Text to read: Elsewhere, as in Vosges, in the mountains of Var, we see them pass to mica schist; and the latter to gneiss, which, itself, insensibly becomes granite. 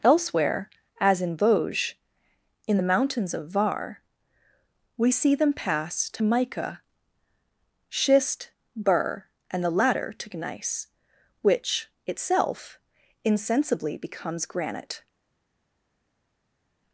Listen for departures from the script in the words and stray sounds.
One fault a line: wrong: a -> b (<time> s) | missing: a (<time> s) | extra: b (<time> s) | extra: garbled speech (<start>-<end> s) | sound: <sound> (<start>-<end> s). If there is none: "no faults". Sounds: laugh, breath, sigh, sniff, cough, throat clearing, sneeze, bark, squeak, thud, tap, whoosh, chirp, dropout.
extra: burr (8.8 s)